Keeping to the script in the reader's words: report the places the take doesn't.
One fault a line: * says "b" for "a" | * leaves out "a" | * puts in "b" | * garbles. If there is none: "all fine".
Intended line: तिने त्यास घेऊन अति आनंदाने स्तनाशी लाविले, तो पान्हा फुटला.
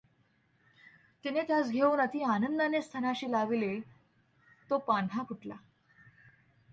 all fine